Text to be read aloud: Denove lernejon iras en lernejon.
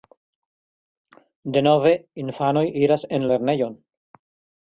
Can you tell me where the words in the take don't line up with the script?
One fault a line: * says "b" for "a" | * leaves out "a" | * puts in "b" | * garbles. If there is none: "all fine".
* says "infanoj" for "lernejon"